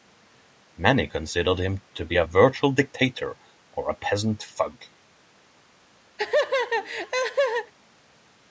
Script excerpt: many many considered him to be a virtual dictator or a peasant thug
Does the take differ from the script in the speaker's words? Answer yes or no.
yes